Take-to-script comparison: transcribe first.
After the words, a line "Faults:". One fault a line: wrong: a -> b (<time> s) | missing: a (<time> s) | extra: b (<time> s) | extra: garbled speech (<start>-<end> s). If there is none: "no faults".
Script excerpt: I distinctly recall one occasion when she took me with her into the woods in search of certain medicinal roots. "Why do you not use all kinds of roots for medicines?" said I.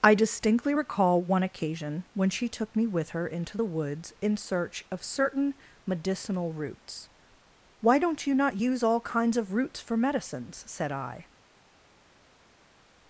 I distinctly recall one occasion when she took me with her into the woods in search of certain medicinal roots. "Why don't you not use all kinds of roots for medicines?" said I.
Faults:
wrong: do -> don't (8.0 s)